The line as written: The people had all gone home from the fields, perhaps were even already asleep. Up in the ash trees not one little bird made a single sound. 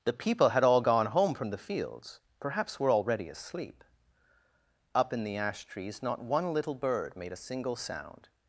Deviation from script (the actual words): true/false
true